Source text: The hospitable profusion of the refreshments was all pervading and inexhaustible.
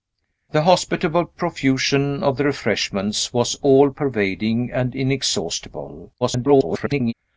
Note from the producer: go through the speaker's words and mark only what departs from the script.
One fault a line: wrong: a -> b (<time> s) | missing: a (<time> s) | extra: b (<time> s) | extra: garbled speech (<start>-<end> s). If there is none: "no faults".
extra: garbled speech (6.2-7.1 s)